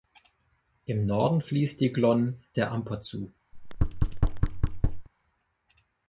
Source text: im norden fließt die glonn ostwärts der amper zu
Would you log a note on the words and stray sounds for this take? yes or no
yes